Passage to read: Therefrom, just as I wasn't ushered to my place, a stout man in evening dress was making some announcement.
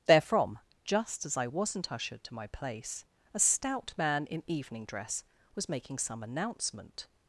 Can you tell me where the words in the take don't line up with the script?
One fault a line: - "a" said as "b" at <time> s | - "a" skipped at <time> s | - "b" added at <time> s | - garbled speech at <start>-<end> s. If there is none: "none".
none